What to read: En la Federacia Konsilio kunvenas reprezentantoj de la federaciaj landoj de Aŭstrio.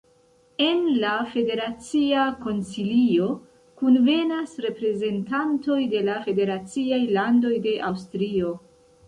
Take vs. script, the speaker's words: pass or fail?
pass